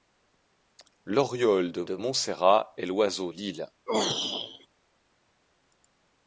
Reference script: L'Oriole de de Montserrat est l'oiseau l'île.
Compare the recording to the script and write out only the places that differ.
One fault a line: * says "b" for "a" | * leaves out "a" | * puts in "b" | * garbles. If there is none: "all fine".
all fine